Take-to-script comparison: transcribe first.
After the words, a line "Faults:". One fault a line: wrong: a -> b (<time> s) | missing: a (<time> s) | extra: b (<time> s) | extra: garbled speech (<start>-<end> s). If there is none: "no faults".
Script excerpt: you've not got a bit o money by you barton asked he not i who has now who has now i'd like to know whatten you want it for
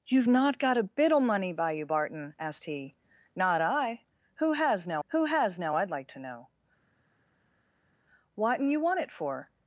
you've not got a bit o money by you barton asked he not i who has now who has now i'd like to know whatten you want it for
Faults:
no faults